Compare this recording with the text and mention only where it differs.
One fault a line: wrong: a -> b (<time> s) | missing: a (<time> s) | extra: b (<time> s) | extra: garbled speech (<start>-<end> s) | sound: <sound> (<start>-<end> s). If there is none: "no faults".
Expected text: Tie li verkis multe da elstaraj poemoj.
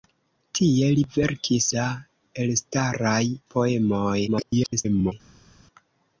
missing: multe (1.7 s)
extra: garbled speech (4.3-5.1 s)